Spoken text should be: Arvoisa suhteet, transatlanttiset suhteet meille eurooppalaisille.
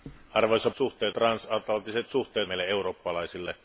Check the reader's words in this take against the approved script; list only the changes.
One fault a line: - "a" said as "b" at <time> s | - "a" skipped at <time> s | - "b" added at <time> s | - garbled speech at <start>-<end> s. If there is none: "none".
none